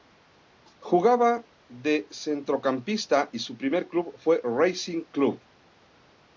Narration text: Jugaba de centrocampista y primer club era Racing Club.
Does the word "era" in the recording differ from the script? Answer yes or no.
yes